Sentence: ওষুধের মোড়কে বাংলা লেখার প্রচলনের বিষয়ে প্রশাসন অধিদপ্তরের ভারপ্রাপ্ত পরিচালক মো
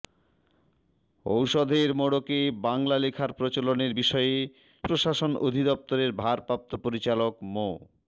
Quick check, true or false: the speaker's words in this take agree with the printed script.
true